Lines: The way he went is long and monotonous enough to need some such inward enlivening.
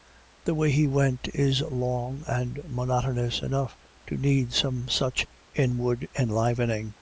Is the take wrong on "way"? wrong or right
right